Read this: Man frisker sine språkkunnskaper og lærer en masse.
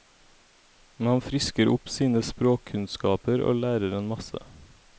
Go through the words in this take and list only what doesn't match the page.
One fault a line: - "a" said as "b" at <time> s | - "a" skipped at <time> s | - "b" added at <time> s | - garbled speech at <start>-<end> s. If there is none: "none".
- "opp" added at 1.7 s